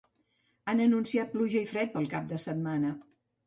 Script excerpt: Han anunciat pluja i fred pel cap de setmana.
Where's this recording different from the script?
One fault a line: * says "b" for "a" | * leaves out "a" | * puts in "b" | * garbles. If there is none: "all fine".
all fine